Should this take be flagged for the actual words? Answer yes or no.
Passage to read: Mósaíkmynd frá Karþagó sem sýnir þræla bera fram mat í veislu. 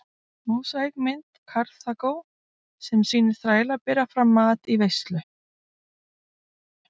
yes